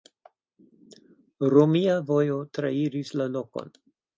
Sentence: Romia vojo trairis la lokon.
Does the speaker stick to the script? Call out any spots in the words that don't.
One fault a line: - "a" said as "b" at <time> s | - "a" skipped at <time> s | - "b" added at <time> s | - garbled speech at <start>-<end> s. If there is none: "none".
none